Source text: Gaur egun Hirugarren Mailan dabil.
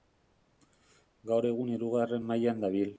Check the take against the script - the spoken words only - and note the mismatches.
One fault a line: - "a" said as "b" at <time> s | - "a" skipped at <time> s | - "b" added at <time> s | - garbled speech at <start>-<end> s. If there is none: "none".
none